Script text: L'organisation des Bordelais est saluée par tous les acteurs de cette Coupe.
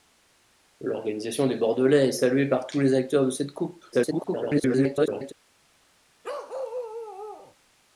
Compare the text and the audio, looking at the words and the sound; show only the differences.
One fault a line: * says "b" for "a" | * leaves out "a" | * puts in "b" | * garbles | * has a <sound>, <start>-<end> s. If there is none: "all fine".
* garbles
* has a bark, 6.2-7.6 s